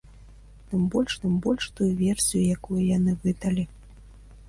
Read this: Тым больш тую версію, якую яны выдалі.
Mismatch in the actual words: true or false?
true